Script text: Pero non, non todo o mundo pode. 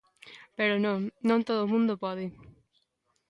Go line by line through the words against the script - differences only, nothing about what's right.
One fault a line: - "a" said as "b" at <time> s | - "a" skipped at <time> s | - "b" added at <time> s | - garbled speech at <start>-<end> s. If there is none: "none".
none